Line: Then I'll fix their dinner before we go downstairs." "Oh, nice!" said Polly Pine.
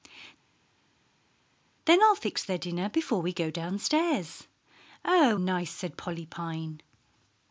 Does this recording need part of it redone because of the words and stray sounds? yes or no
no